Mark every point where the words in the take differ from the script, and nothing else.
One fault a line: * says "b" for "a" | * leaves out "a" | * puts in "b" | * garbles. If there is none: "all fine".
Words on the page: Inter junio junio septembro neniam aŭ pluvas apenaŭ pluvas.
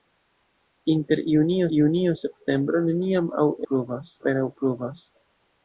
all fine